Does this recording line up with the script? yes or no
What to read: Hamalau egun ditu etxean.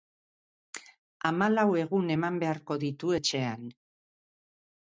no